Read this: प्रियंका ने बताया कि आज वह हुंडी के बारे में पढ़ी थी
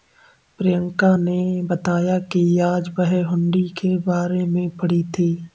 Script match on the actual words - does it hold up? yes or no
yes